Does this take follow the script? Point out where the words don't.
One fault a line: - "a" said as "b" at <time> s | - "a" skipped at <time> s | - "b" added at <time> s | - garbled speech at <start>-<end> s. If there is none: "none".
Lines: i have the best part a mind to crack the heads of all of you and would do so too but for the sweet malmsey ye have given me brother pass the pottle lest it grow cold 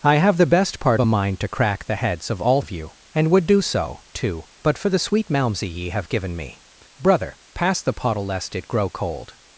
none